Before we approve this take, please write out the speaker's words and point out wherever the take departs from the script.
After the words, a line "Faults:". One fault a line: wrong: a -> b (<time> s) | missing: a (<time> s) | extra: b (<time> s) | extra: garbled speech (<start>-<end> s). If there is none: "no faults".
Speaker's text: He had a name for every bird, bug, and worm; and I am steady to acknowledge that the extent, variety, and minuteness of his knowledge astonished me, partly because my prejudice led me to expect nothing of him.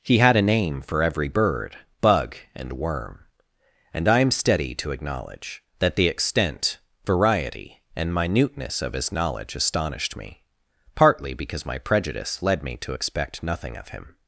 He had a name for every bird, bug, and worm; and I am steady to acknowledge that the extent, variety, and minuteness of his knowledge astonished me, partly because my prejudice led me to expect nothing of him.
Faults:
no faults